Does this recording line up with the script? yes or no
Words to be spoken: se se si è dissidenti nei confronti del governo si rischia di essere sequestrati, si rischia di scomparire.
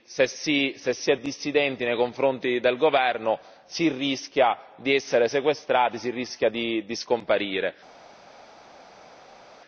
no